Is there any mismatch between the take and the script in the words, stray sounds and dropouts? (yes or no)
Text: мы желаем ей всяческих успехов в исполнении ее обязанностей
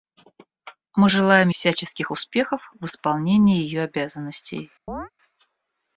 yes